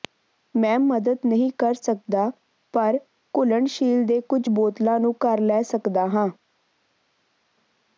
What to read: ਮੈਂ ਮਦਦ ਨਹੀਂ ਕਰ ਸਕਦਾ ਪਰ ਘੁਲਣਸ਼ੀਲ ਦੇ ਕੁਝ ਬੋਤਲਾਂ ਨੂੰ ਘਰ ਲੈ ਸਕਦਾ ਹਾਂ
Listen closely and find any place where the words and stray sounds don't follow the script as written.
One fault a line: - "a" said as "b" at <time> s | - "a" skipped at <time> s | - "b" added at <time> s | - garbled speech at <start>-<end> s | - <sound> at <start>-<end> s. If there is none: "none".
none